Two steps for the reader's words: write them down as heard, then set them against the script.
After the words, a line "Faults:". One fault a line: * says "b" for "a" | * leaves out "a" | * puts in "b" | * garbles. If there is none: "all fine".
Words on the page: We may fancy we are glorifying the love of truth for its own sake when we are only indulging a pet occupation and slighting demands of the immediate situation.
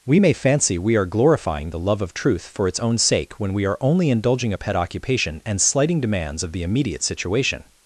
We may fancy we are glorifying the love of truth for its own sake when we are only indulging a pet occupation and slighting demands of the immediate situation.
Faults:
all fine